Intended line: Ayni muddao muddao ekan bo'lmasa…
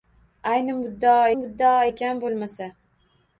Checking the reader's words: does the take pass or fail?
pass